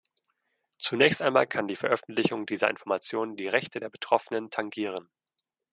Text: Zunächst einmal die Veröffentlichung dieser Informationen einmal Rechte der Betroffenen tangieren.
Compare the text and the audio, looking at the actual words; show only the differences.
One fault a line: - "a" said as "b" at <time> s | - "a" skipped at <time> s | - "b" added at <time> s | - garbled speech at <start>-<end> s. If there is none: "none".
- "kann" added at 1.4 s
- "einmal" said as "die" at 3.3 s